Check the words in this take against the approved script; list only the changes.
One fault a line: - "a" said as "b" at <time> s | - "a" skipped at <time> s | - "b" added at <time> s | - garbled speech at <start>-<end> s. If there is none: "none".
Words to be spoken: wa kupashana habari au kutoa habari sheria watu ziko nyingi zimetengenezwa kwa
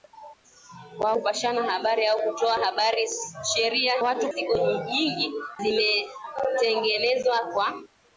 none